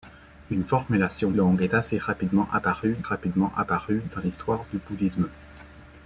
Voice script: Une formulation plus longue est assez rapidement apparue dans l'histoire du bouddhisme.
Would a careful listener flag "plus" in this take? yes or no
yes